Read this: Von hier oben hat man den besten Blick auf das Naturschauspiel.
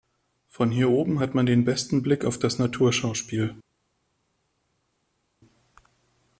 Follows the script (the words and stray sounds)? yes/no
yes